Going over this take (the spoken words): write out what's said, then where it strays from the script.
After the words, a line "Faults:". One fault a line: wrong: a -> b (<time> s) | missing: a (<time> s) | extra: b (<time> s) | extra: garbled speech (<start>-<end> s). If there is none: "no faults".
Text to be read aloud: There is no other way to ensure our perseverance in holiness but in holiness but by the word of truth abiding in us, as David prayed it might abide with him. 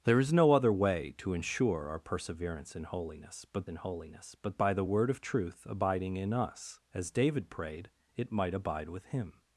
There is no other way to ensure our perseverance in holiness but in holiness but by the word of truth abiding in us, as David prayed it might abide with him.
Faults:
no faults